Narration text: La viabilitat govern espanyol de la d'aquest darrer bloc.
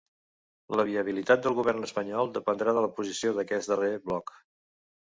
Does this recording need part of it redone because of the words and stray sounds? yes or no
yes